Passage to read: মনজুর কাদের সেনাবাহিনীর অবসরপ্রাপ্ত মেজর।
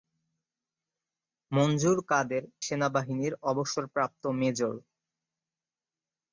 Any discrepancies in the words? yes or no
no